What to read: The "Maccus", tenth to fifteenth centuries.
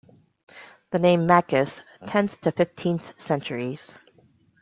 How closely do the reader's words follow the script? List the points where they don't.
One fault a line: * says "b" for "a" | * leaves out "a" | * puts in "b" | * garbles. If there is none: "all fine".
* puts in "name"